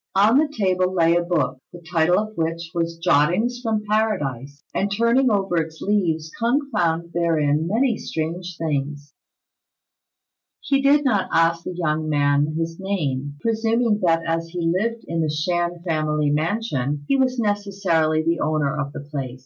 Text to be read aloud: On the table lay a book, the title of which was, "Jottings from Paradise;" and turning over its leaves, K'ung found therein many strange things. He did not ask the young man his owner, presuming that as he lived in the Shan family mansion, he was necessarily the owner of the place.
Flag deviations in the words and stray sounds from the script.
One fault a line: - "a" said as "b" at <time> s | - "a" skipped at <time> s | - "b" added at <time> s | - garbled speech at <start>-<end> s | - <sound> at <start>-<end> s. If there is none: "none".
- "owner" said as "name" at 12.8 s